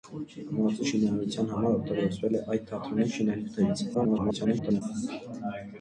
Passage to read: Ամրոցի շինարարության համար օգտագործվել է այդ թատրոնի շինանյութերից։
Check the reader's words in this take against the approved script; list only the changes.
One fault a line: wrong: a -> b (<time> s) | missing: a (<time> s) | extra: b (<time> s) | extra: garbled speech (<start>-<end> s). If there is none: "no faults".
extra: garbled speech (3.9-4.8 s)